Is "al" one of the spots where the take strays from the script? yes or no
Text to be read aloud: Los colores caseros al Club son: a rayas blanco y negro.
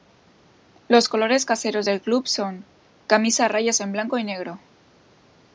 yes